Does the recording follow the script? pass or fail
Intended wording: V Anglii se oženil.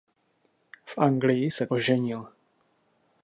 pass